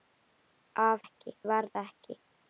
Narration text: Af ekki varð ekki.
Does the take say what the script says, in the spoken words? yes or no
yes